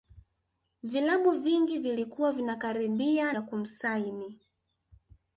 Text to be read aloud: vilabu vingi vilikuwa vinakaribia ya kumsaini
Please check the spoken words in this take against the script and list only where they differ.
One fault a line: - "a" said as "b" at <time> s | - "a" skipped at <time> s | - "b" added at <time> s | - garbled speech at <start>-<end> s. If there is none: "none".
none